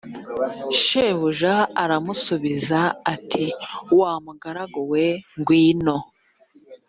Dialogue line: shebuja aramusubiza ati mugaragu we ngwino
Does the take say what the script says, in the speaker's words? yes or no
no